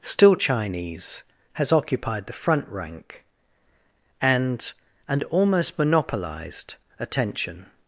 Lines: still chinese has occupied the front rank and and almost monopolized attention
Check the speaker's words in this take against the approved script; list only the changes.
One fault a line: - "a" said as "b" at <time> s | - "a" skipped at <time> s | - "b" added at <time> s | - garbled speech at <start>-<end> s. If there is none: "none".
none